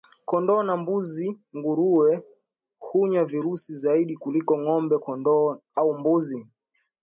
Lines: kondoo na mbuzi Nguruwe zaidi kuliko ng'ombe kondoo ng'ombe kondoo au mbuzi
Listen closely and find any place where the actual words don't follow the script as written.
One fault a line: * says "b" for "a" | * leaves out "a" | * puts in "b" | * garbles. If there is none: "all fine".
* puts in "hunya virusi"
* leaves out "ng'ombe kondoo"